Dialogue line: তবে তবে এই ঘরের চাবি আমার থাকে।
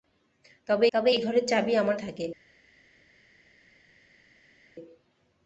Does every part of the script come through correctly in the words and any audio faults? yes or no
yes